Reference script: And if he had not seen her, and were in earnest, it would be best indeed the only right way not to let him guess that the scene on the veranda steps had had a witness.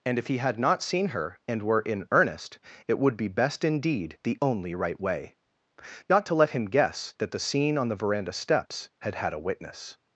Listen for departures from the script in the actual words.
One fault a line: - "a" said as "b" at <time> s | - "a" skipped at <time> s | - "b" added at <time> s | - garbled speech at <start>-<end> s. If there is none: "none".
none